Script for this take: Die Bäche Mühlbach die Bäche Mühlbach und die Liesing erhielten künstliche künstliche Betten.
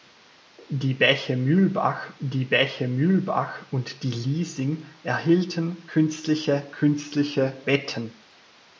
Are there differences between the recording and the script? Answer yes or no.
no